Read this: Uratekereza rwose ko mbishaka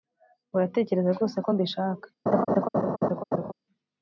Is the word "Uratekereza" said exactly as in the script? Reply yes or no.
yes